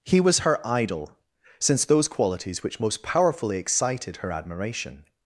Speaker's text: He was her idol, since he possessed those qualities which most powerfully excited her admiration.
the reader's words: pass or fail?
fail